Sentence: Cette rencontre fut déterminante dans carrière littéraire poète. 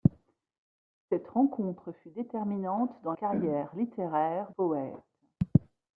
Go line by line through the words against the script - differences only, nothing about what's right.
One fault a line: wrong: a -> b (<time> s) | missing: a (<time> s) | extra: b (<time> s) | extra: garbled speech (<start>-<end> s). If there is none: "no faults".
no faults